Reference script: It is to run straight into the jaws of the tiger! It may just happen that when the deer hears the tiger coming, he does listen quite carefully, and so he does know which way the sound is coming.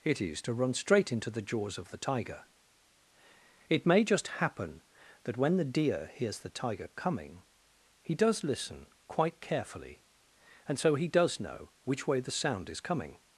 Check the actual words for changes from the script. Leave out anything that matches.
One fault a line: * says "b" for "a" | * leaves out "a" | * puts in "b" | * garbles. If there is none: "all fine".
all fine